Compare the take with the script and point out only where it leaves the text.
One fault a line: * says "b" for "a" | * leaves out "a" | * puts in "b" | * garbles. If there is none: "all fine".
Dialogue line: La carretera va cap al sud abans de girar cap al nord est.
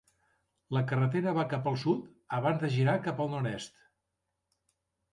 all fine